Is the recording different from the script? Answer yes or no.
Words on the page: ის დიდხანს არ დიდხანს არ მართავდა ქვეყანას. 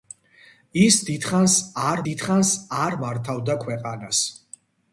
no